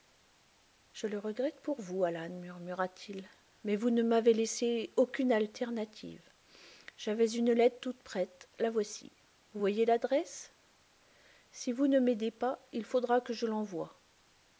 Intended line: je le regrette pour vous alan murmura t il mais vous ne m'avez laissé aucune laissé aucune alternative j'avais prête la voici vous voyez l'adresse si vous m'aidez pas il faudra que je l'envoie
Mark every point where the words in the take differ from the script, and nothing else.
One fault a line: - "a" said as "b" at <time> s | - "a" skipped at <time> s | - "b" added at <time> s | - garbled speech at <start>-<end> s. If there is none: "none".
- "laissé aucune alternative j'avais" said as "alternative j'avais une lettre toute" at 5.3 s
- "ne" added at 11.9 s